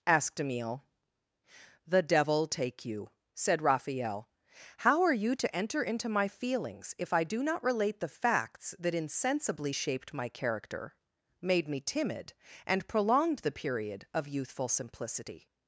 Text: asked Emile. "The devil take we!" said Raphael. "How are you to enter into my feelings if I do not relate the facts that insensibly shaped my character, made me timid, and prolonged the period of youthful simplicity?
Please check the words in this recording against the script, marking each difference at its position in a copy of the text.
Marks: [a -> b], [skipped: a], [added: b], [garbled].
asked Emile. "The devil take [we!" -> you] said Raphael. "How are you to enter into my feelings if I do not relate the facts that insensibly shaped my character, made me timid, and prolonged the period of youthful simplicity?